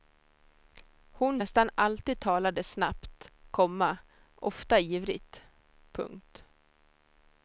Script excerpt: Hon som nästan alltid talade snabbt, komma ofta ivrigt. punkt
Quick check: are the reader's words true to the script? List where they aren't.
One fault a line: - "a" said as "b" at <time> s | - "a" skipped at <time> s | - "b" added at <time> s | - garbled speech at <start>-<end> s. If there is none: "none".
- "som" skipped at 1.4 s